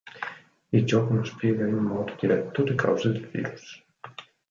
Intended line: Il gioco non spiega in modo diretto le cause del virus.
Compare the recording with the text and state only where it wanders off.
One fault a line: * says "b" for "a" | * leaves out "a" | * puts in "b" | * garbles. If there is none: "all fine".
all fine